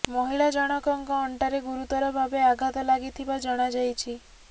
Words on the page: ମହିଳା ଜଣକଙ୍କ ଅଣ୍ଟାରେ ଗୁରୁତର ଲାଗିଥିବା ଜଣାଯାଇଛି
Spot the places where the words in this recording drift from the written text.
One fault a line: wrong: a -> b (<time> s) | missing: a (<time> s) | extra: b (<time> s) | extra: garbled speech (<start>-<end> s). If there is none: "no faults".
extra: ଭାବେ ଆଘାତ (2.1 s)